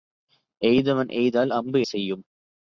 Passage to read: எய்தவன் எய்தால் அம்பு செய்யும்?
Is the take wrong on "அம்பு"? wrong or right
right